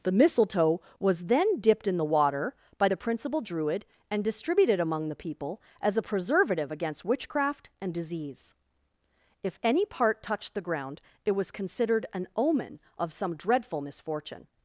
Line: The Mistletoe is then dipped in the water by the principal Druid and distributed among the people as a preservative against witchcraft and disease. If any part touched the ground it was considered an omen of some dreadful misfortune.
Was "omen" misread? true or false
false